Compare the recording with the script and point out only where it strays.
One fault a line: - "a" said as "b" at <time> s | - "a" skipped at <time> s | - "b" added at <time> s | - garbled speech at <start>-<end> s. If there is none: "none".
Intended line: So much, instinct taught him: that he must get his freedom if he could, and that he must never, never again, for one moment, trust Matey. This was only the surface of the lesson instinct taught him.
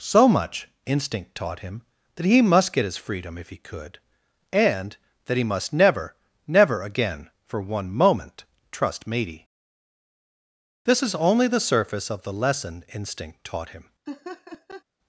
- "was" said as "is" at 11.0 s